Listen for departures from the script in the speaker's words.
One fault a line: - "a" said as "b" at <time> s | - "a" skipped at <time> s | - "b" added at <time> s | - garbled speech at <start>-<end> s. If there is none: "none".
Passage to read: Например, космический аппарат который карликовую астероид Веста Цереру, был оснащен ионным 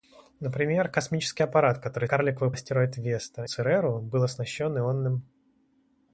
none